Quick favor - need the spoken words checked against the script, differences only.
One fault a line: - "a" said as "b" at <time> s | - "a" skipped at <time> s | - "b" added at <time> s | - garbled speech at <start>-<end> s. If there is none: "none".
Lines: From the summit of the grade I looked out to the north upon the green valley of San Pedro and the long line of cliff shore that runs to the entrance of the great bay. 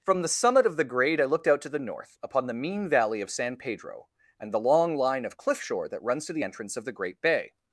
- "green" said as "mean" at 2.5 s